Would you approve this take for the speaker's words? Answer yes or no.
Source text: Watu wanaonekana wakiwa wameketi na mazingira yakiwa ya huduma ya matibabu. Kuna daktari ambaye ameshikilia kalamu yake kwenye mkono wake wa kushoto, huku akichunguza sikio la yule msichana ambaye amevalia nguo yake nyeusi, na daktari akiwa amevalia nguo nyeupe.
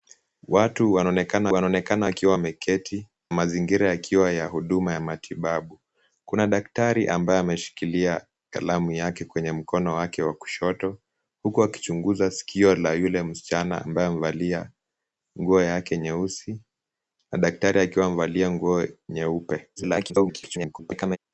no